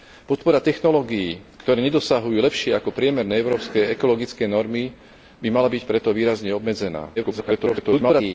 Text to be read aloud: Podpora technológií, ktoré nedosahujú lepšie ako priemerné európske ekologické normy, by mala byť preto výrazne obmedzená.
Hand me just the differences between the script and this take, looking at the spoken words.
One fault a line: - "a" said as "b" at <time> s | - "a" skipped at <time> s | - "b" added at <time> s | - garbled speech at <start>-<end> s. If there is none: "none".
- garbled speech at 7.2-8.3 s